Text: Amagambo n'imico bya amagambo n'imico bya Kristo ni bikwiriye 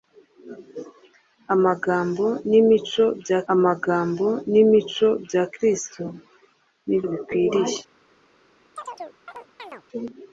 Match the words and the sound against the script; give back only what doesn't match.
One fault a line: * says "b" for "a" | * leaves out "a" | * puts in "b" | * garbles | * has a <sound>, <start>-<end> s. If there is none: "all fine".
* has a chirp, 8.8-9.8 s